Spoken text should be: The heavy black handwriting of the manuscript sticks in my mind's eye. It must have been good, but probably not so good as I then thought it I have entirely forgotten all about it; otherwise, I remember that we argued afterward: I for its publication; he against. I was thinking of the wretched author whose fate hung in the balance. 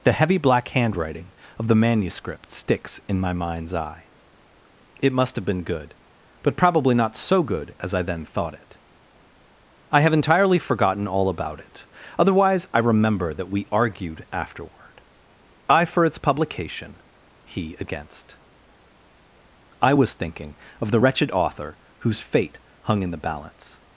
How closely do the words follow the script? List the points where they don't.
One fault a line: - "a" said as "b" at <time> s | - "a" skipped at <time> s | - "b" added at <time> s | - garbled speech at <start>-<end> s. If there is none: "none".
none